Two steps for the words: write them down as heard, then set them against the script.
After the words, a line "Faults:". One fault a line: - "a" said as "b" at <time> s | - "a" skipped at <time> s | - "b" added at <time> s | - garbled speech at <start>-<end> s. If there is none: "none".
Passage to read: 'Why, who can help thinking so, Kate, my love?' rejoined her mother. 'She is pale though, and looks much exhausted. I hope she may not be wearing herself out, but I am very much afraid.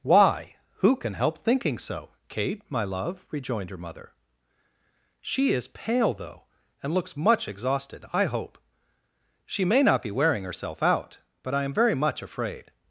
'Why, who can help thinking so, Kate, my love?' rejoined her mother. 'She is pale though, and looks much exhausted. I hope she may not be wearing herself out, but I am very much afraid.
Faults:
none